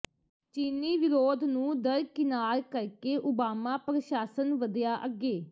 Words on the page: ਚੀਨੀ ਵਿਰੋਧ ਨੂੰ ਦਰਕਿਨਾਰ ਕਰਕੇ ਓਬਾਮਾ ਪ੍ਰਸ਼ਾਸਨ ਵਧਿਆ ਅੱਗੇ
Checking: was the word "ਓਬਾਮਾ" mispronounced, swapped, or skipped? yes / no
no